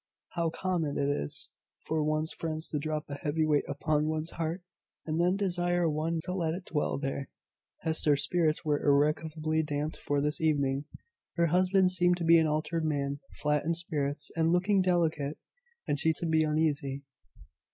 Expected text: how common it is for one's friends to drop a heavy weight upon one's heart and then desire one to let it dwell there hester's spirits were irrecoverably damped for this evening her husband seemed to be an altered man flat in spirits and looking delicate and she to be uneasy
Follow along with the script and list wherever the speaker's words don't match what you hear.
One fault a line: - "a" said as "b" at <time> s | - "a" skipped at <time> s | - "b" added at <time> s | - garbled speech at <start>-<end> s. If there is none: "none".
none